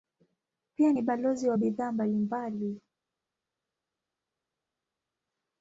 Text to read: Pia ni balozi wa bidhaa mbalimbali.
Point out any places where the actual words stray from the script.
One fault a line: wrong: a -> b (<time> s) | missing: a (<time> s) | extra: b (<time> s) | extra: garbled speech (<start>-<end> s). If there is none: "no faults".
no faults